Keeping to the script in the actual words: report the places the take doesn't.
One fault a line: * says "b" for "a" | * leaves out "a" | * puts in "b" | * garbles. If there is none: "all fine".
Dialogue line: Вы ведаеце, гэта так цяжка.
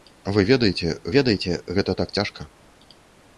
* puts in "ведаеце"